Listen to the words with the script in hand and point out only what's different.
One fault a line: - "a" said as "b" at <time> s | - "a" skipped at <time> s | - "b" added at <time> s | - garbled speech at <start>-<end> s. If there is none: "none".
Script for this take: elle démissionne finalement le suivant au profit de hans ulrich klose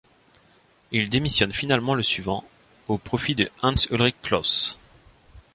- "elle" said as "il" at 0.9 s